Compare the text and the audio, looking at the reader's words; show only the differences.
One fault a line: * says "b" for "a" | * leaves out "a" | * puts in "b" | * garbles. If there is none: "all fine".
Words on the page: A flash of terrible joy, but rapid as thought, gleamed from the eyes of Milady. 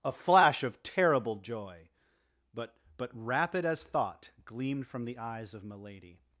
* puts in "but"